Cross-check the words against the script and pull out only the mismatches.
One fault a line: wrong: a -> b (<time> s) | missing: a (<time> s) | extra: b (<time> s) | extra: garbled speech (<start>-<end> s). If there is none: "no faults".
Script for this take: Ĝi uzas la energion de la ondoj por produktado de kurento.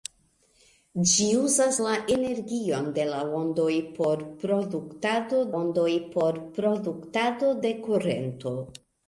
extra: ondoj por produktado (5.6 s)